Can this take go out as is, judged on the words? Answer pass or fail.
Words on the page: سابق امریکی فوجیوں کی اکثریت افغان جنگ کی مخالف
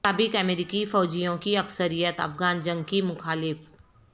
pass